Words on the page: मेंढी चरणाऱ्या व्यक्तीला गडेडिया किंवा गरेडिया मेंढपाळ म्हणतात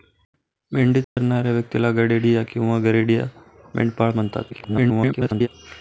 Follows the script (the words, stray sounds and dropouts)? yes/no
no